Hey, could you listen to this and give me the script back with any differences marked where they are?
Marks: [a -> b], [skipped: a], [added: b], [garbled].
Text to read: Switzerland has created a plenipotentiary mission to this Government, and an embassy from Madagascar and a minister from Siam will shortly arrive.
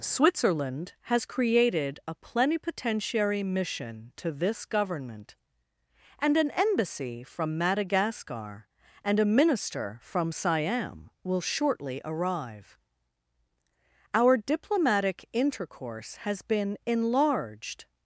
Switzerland has created a plenipotentiary mission to this Government, and an embassy from Madagascar and a minister from Siam will shortly arrive. [added: Our diplomatic intercourse has been enlarged]